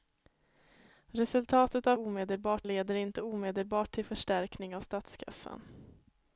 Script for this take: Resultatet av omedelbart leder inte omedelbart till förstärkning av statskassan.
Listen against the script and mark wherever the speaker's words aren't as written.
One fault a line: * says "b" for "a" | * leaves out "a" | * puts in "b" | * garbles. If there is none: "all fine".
all fine